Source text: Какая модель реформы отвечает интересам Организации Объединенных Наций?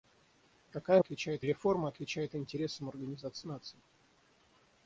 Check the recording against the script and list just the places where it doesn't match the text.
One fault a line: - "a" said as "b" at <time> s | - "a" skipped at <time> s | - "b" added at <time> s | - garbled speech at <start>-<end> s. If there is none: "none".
- "модель" said as "отвечает" at 1.0 s
- "Объединенных" skipped at 3.5 s